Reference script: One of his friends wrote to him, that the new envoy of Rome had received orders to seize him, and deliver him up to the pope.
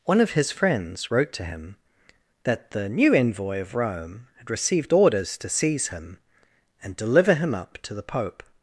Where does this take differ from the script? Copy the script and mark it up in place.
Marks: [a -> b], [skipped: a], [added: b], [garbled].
One of his friends wrote to him, that the new envoy of Rome had received orders to seize him, and deliver him up to the pope.